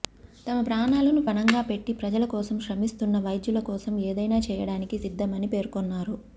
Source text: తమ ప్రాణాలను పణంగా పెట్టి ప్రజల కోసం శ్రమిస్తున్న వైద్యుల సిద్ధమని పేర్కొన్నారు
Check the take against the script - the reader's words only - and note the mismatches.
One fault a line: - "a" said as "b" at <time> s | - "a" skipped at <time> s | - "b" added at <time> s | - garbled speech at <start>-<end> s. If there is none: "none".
- "కోసం ఏదైనా చేయడానికి" added at 3.7 s